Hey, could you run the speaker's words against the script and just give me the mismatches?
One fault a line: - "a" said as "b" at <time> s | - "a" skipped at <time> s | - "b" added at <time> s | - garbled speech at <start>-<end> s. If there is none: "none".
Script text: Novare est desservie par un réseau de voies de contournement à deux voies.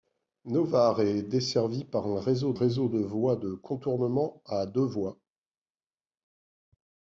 - "réseau" added at 2.5 s